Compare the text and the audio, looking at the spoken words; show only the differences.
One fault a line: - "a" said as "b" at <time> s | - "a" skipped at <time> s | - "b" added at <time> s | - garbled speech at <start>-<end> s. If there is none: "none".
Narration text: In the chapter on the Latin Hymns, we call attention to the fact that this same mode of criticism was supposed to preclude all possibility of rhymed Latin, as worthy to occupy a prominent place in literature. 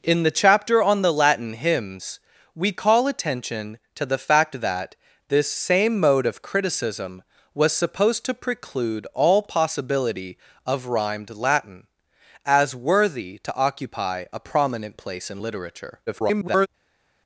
- garbled speech at 16.1-16.7 s